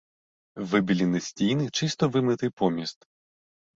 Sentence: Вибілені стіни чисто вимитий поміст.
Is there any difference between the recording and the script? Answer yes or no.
no